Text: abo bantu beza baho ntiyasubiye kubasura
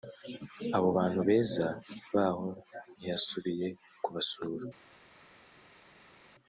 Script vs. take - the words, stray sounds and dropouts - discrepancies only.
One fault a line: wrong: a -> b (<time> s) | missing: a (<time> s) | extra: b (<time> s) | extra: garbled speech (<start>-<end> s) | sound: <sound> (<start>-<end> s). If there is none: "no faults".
no faults